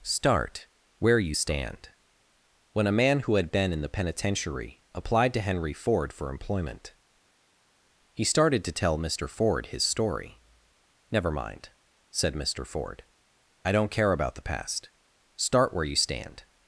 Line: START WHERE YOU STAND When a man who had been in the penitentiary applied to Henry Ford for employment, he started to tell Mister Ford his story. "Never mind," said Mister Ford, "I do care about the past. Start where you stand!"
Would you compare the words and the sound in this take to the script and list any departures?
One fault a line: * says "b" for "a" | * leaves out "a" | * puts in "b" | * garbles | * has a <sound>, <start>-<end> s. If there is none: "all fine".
* says "don't" for "do"